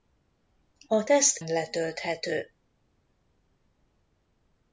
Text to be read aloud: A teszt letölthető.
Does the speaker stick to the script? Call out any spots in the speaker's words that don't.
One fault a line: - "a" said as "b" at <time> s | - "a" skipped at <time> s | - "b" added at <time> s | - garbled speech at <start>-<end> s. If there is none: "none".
none